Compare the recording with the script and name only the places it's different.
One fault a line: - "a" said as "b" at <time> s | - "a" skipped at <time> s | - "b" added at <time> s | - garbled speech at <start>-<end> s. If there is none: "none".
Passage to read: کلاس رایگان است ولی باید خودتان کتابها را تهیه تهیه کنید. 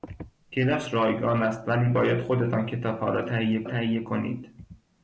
none